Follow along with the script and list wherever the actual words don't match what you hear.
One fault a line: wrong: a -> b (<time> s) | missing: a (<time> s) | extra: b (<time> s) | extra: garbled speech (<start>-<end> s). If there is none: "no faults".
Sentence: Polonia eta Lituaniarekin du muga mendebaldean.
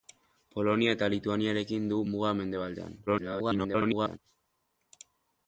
extra: garbled speech (3.1-4.2 s)